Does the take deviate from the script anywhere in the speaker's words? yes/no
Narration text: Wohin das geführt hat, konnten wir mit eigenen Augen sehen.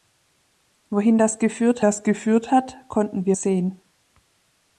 yes